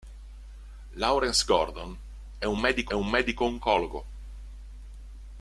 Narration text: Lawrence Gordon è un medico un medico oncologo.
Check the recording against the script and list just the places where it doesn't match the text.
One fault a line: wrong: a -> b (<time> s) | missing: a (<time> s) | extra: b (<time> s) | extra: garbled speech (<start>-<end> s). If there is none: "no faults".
no faults